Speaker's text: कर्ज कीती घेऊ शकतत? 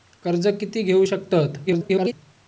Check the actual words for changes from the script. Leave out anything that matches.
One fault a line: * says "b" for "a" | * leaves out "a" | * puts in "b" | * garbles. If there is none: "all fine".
* garbles